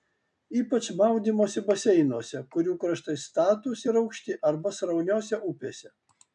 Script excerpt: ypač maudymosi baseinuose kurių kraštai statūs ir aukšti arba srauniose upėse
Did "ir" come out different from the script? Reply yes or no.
no